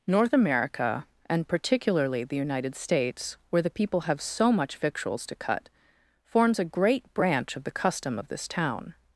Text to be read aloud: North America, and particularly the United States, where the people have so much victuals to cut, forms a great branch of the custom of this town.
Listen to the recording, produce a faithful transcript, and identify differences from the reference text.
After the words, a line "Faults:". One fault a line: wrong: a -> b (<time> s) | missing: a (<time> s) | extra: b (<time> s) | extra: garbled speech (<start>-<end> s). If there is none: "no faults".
North America, and particularly the United States, where the people have so much victuals to cut, forms a great branch of the custom of this town.
Faults:
no faults